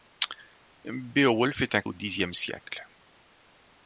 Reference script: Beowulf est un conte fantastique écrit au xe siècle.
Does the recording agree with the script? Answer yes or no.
no